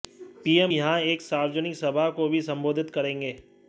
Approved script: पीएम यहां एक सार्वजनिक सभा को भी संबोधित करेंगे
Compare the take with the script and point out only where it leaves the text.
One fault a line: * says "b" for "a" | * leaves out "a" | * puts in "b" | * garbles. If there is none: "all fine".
all fine